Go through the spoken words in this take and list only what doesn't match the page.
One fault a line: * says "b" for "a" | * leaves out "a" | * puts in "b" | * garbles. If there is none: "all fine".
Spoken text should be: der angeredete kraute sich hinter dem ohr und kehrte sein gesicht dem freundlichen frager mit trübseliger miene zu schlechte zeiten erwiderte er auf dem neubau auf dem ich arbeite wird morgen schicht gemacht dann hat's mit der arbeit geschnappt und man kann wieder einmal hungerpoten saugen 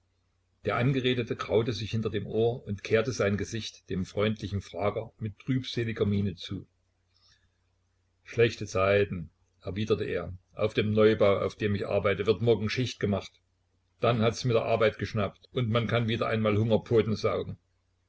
all fine